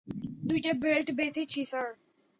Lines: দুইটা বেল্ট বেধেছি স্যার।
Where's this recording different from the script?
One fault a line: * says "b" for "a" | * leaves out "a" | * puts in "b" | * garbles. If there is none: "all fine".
all fine